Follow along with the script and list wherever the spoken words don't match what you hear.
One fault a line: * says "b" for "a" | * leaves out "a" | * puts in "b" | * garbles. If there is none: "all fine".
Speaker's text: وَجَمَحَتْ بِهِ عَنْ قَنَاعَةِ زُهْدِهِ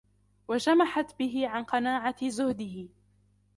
all fine